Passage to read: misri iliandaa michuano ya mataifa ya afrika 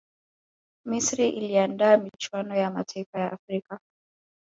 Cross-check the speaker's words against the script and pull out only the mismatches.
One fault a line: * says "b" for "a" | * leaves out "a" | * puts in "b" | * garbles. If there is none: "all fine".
all fine